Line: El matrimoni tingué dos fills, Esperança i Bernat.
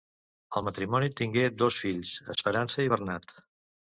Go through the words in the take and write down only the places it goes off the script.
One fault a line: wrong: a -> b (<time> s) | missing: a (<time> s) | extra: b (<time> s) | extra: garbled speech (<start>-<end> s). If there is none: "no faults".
no faults